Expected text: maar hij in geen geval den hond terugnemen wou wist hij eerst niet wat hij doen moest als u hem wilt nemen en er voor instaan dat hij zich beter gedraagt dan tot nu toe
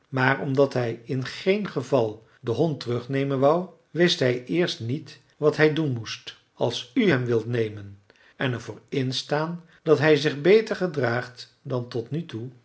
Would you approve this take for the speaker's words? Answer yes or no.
no